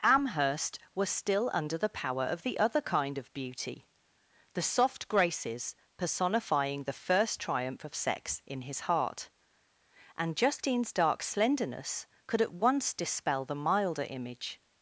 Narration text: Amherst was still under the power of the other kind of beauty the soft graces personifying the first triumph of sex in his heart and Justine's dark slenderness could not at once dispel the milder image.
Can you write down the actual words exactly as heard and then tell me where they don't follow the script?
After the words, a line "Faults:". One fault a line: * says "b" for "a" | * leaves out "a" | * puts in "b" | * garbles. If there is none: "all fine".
Amherst was still under the power of the other kind of beauty the soft graces personifying the first triumph of sex in his heart and Justine's dark slenderness could at once dispel the milder image.
Faults:
* leaves out "not"